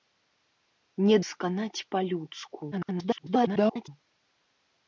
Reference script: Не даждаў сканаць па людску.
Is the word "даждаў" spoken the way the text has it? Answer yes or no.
no